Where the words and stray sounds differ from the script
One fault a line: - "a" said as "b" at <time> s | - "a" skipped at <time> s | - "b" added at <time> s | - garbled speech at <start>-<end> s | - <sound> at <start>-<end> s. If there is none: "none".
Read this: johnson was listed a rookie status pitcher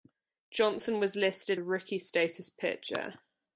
none